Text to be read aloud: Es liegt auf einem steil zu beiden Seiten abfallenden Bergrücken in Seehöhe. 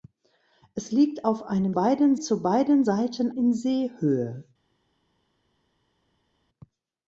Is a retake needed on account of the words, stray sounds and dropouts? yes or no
yes